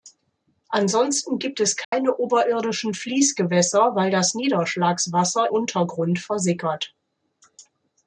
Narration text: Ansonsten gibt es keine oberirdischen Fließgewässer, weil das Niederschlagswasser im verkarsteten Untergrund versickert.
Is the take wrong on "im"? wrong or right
wrong